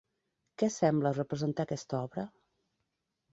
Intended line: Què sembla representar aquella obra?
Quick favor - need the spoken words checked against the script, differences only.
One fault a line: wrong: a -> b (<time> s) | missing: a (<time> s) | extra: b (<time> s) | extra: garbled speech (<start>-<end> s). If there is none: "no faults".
wrong: aquella -> aquesta (1.7 s)